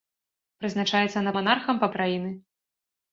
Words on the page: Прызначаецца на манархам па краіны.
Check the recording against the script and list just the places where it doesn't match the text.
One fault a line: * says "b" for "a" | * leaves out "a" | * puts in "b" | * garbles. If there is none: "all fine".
all fine